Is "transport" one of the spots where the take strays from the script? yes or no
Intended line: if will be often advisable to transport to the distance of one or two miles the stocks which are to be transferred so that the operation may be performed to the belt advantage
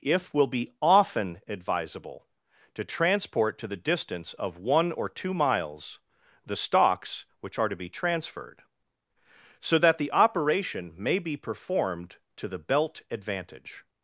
no